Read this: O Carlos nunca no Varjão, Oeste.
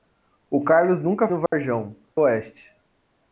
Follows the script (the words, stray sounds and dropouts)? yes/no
no